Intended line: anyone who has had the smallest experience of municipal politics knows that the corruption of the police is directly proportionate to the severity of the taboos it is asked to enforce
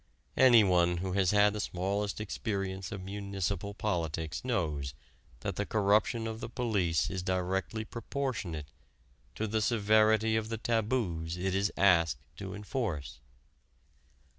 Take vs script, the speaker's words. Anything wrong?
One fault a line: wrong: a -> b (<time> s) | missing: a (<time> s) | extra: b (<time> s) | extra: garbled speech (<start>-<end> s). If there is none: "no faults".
no faults